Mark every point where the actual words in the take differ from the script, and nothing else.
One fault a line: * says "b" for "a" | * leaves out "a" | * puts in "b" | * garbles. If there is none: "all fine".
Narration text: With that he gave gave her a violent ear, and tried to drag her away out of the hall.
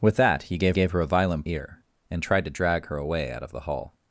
all fine